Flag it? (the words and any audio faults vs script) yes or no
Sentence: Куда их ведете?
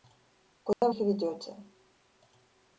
yes